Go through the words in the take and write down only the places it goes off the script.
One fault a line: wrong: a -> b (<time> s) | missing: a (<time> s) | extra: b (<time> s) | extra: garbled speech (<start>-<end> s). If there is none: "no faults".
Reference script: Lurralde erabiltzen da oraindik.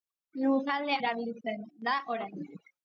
no faults